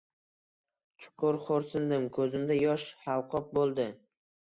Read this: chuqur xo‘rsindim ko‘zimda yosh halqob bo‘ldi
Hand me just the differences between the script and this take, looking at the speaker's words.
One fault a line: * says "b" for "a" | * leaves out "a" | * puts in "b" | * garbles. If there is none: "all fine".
all fine